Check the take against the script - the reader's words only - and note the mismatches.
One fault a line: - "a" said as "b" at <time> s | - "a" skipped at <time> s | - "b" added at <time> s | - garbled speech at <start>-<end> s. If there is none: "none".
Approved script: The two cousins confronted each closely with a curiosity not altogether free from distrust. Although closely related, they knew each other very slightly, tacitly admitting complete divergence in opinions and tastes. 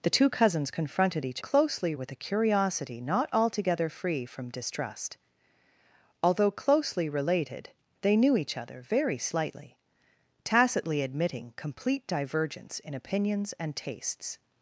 none